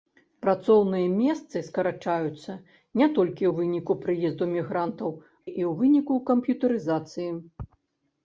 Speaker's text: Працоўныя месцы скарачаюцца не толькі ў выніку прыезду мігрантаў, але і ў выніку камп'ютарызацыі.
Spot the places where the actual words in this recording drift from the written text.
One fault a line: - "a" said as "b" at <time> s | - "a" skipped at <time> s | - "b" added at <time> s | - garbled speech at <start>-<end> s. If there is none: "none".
- "але" skipped at 5.1 s